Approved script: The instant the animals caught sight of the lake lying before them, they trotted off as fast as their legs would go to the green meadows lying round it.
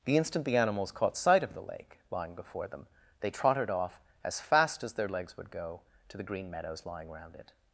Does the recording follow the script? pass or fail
pass